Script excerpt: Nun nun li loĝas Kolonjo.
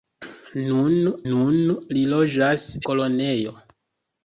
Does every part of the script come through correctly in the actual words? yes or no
yes